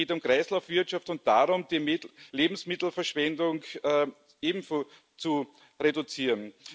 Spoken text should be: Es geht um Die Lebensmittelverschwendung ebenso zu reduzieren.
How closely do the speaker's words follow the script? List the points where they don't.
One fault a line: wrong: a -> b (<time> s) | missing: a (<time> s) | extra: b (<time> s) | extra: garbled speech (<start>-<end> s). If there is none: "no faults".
extra: Kreislaufwirtschaft und darum (0.2 s)